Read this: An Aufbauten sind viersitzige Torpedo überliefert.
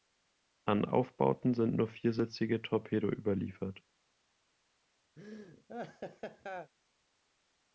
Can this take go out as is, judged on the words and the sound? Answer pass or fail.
fail